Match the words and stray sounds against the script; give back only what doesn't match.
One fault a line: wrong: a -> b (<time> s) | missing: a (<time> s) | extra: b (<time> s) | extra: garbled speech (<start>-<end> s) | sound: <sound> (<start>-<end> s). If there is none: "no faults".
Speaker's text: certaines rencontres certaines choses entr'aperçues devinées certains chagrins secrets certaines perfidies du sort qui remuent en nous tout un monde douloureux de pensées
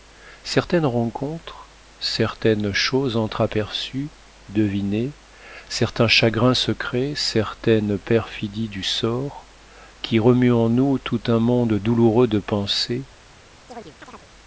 sound: chirp (13.7-14.3 s)